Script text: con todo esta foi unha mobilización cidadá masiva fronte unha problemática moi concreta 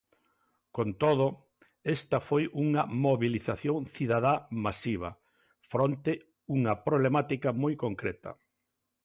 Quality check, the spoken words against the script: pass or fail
pass